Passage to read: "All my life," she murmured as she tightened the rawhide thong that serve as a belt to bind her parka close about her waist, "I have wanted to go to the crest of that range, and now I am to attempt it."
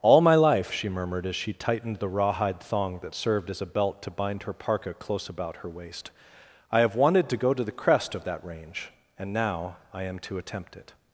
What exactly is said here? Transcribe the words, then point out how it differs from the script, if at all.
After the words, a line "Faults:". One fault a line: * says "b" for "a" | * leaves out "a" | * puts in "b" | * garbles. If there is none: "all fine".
"All my life," she murmured as she tightened the rawhide thong that served as a belt to bind her parka close about her waist, "I have wanted to go to the crest of that range, and now I am to attempt it."
Faults:
* says "served" for "serve"